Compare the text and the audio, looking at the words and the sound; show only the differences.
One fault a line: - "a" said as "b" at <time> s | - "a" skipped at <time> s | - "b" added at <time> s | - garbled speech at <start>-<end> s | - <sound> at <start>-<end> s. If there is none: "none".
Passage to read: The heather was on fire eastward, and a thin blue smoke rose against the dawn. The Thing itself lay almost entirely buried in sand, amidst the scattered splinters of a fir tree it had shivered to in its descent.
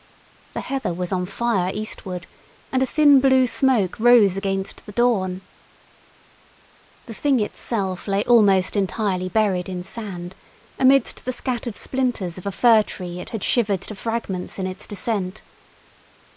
- "fragments" added at 13.9 s